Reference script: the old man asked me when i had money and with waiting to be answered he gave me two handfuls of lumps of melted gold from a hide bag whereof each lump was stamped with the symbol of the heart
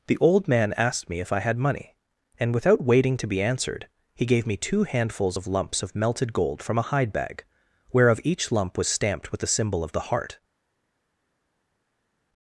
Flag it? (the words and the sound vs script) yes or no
yes